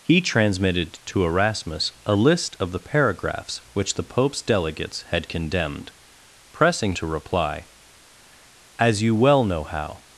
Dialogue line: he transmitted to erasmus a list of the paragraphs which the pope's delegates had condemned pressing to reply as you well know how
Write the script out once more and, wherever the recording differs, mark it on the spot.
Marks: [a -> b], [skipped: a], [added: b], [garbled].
he transmitted to erasmus a list of the paragraphs which the pope's delegates had condemned pressing to reply as you well know how